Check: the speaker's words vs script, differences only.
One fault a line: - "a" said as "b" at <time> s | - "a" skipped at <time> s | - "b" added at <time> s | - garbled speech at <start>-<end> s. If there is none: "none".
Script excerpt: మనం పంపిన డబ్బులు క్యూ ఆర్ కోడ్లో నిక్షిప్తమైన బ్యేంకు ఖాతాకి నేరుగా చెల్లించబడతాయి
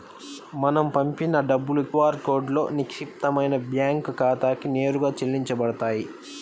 - "క్యూ" skipped at 1.8 s